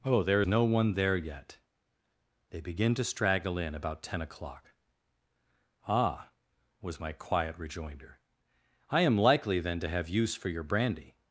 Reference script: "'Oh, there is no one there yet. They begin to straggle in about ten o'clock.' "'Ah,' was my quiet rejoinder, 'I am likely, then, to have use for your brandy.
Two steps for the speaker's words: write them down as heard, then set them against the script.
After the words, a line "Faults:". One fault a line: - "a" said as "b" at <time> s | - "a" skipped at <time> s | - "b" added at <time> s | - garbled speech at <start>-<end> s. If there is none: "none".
"'Oh, there no one there yet. They begin to straggle in about ten o'clock.' "'Ah,' was my quiet rejoinder, 'I am likely, then, to have use for your brandy.
Faults:
- "is" skipped at 0.4 s